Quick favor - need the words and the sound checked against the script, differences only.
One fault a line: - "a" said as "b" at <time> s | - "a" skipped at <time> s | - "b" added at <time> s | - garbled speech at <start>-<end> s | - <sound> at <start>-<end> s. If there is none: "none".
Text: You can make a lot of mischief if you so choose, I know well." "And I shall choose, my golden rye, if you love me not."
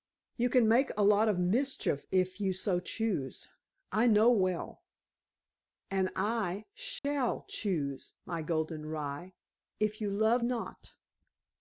- dropout at 7.0-7.0 s
- "me" skipped at 10.4 s